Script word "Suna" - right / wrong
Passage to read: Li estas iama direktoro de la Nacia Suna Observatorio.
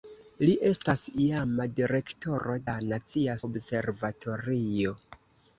wrong